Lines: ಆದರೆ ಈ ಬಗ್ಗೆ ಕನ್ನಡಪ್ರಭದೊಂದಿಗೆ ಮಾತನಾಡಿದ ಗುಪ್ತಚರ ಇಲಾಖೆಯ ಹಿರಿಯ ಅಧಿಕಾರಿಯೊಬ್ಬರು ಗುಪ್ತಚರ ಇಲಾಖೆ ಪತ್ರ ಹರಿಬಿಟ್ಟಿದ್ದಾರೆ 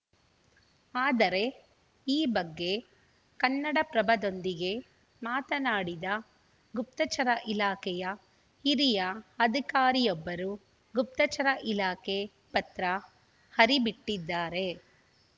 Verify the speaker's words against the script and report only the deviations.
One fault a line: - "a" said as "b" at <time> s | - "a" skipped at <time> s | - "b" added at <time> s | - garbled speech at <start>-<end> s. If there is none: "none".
none